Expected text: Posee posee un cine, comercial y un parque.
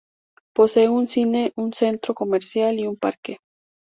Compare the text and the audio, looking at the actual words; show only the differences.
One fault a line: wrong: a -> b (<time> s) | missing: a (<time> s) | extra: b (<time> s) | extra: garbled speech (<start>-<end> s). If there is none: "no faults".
wrong: posee -> un cine (0.9 s)
wrong: cine -> centro (1.7 s)